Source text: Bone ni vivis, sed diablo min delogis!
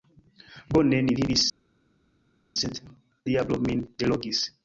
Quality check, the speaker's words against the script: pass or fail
pass